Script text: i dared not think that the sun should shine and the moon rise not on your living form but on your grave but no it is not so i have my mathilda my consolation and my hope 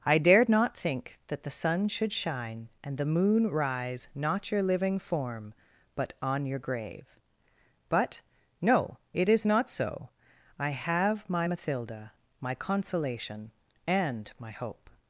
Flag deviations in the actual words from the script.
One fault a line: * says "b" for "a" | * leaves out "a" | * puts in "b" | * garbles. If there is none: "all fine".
* leaves out "on"